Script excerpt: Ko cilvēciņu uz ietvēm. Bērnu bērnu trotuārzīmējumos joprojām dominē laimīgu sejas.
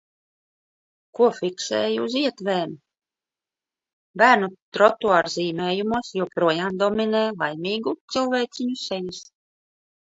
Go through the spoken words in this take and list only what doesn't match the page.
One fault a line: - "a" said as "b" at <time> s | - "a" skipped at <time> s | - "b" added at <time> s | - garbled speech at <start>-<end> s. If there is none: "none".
- "cilvēciņu" said as "fiksēju" at 1.4 s
- "bērnu" skipped at 4.5 s
- "cilvēciņu" added at 8.2 s